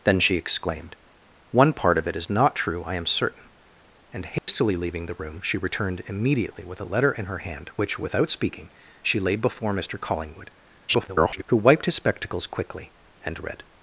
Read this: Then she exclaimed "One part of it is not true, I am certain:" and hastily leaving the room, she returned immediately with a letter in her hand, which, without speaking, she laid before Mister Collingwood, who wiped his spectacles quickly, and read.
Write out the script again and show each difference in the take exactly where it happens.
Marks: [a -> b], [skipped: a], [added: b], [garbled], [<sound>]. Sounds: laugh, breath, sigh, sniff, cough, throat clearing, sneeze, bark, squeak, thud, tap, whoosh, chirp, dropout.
Then she exclaimed "One part of it is not true, I am certain:" and hastily [dropout] leaving the room, she returned immediately with a letter in her hand, which, without speaking, she laid before Mister Collingwood, [garbled] who wiped his spectacles quickly, and read.